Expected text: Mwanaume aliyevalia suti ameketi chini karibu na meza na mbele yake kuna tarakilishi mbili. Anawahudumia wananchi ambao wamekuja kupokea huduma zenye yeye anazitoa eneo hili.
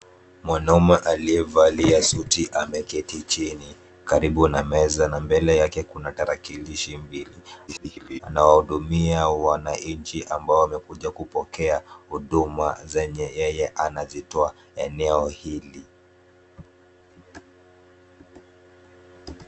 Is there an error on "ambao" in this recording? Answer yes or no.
no